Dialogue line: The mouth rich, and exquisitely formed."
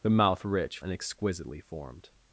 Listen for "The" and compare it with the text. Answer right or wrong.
right